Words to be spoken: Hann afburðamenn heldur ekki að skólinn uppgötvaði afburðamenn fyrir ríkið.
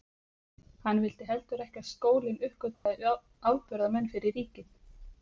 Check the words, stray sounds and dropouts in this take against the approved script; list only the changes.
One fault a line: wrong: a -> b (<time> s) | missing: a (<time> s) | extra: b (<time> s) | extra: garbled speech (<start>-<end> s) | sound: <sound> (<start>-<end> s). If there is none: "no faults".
wrong: afburðamenn -> vildi (1.0 s)
sound: dropout (2.7-2.9 s)